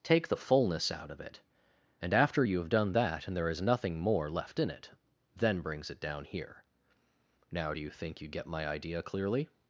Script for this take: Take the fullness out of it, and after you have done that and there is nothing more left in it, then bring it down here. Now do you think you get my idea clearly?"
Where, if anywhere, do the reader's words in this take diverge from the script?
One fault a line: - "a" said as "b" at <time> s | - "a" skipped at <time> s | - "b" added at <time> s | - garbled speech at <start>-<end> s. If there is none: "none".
- "bring" said as "brings" at 5.6 s